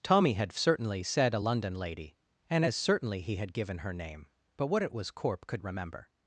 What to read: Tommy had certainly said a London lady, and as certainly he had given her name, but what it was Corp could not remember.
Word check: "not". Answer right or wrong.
wrong